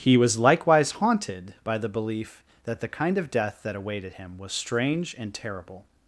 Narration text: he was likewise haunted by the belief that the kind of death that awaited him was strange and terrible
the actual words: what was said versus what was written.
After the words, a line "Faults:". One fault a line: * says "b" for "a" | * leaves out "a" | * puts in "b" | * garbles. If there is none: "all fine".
he was likewise haunted by the belief that the kind of death that awaited him was strange and terrible
Faults:
all fine